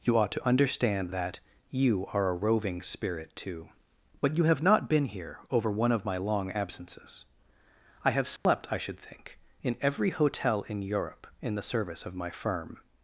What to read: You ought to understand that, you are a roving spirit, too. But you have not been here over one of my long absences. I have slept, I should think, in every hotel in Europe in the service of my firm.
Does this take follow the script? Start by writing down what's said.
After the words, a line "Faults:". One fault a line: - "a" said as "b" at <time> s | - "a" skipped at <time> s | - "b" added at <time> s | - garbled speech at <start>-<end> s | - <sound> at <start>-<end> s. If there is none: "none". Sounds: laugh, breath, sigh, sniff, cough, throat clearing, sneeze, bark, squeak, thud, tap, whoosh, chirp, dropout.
You ought to understand that, you are a roving spirit, too. But you have not been here over one of my long absences. I have slept, I should think, in every hotel in Europe in the service of my firm.
Faults:
- dropout at 8.4-8.5 s